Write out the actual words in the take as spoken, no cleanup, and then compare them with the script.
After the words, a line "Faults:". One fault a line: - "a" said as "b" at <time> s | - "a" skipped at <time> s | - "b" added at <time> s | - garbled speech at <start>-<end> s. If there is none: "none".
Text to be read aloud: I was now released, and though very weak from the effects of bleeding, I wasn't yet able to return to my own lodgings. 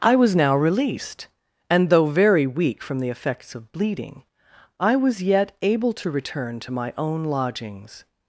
I was now released, and though very weak from the effects of bleeding, I was yet able to return to my own lodgings.
Faults:
- "wasn't" said as "was" at 5.0 s